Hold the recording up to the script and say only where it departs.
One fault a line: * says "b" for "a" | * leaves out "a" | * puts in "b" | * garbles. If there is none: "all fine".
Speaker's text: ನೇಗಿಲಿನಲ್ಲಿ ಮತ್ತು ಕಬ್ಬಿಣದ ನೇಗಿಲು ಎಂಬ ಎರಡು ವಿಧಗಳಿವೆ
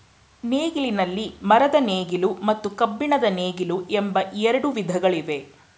* puts in "ಮರದ ನೇಗಿಲು"